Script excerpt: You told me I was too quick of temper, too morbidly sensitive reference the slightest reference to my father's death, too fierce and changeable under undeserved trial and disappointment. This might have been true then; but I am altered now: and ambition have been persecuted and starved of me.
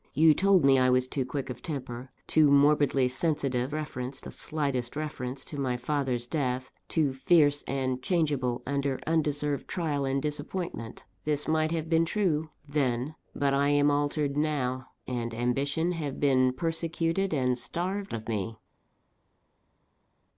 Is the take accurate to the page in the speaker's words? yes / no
yes